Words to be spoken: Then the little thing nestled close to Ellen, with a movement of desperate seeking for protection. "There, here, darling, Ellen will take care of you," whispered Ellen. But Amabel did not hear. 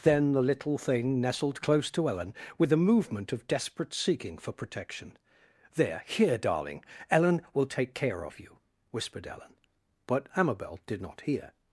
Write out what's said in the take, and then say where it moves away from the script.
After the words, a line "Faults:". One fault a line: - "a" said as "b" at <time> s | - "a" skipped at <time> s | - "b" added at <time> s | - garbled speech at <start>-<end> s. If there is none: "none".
Then the little thing nestled close to Ellen, with a movement of desperate seeking for protection. "There, here, darling, Ellen will take care of you," whispered Ellen. But Amabel did not hear.
Faults:
none